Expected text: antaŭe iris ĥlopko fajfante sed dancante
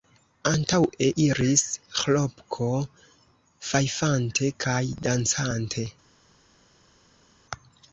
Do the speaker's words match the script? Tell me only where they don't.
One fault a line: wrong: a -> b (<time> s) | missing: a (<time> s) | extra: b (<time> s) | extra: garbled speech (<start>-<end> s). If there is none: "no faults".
wrong: sed -> kaj (4.7 s)